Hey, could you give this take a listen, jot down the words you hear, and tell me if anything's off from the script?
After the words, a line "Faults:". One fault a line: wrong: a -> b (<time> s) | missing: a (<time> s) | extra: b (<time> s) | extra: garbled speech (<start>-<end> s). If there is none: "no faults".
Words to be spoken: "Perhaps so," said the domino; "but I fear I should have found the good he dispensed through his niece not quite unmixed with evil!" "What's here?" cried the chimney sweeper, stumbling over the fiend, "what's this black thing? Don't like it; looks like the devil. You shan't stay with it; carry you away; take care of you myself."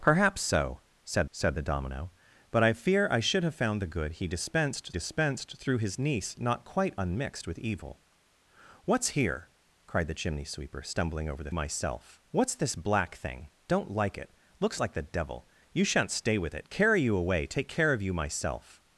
"Perhaps so," said said the domino; "but I fear I should have found the good he dispensed dispensed through his niece not quite unmixed with evil!" "What's here?" cried the chimney sweeper, stumbling over the myself, "what's this black thing? Don't like it; looks like the devil. You shan't stay with it; carry you away; take care of you myself."
Faults:
extra: said (1.3 s)
extra: dispensed (4.9 s)
wrong: fiend -> myself (11.5 s)